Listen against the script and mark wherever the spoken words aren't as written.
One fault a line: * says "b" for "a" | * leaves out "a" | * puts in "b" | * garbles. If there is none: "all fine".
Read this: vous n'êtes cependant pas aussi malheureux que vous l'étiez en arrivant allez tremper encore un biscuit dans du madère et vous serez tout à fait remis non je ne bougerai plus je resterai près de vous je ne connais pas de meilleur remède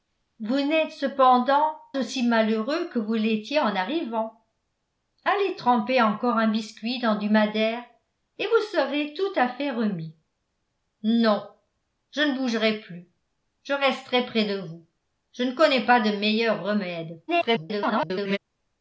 * leaves out "pas"
* garbles